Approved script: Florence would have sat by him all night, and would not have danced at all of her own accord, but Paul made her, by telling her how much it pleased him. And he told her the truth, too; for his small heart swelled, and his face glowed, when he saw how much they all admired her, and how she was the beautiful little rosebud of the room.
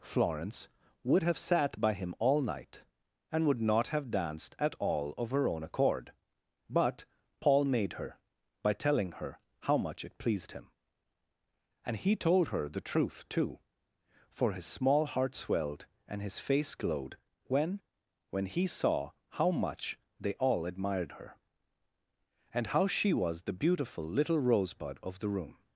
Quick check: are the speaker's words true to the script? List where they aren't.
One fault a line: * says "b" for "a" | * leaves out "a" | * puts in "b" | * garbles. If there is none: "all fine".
* puts in "when"